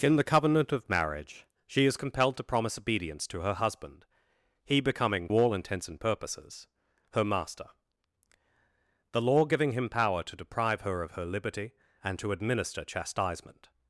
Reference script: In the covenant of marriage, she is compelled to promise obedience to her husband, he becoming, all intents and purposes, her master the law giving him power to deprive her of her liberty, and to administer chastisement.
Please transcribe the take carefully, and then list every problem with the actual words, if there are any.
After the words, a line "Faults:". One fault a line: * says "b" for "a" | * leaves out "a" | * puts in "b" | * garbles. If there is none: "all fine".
In the covenant of marriage, she is compelled to promise obedience to her husband, he becoming, all intents and purposes, her master the law giving him power to deprive her of her liberty, and to administer chastisement.
Faults:
all fine